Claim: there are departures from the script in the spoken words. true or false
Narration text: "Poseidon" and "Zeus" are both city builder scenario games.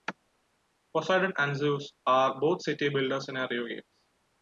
false